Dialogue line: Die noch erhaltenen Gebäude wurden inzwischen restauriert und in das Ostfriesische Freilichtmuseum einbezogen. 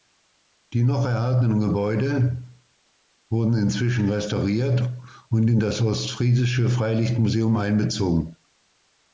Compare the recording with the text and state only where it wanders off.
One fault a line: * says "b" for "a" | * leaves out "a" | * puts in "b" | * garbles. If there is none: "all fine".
all fine